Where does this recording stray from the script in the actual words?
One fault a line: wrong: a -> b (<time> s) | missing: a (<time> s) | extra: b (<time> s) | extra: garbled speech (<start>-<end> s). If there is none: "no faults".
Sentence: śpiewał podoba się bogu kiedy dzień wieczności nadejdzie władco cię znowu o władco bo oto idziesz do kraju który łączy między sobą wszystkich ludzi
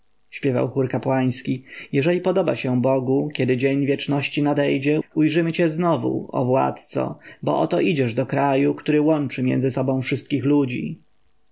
extra: chór kapłański jeżeli (0.7 s)
wrong: władco -> ujrzymy (5.2 s)